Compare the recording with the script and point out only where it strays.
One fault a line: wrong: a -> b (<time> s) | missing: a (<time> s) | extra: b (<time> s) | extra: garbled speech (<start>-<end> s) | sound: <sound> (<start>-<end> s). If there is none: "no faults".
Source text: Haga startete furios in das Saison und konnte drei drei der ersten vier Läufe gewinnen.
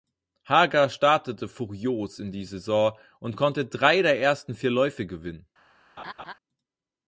wrong: das -> die (2.3 s)
missing: drei (4.0 s)
sound: laugh (6.0-6.3 s)